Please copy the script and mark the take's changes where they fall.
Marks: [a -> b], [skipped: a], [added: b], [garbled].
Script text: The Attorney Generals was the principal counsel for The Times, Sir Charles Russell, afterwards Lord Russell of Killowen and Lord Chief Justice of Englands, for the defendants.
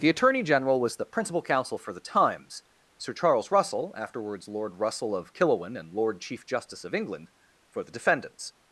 The Attorney [Generals -> General] was the principal counsel for The Times, Sir Charles Russell, afterwards Lord Russell of Killowen and Lord Chief Justice of [Englands, -> England] for the defendants.